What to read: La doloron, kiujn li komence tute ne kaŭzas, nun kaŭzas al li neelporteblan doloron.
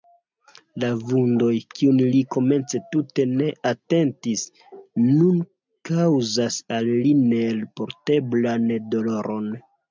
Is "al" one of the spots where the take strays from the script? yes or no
no